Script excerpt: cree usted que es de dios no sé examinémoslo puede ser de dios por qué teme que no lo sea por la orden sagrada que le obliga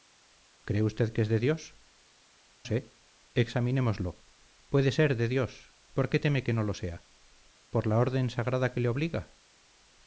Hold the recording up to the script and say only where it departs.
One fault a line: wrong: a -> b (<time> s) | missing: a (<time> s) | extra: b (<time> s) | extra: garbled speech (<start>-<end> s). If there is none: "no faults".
missing: no (1.8 s)